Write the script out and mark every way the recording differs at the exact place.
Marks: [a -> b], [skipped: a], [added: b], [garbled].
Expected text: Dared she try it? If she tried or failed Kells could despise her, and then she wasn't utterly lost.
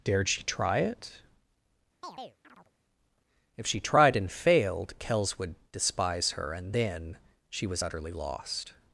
Dared she try it? If she tried [or -> and] failed Kells [could -> would] despise her, and then she [wasn't -> was] utterly lost.